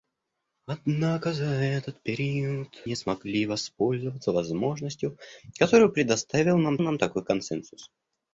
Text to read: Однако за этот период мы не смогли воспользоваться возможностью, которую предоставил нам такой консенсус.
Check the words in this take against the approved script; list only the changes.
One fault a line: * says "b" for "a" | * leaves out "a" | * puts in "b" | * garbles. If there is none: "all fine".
* leaves out "мы"
* puts in "нам"